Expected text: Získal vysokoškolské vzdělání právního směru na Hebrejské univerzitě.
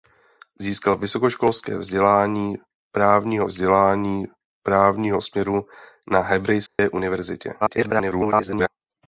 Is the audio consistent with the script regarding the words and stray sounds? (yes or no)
no